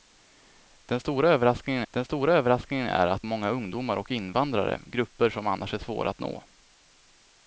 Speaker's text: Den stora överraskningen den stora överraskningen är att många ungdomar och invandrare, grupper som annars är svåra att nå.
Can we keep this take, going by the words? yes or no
yes